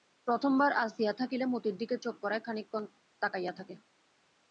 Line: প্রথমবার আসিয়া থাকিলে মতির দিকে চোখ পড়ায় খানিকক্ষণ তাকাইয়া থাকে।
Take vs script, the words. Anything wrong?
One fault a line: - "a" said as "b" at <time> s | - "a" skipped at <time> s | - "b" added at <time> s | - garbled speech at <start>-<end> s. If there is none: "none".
none